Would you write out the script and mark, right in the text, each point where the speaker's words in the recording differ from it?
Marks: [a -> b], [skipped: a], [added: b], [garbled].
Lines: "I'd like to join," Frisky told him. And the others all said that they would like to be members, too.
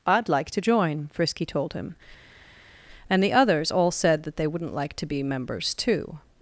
"I'd like to join," Frisky told him. And the others all said that they [would -> wouldn't] like to be members, too.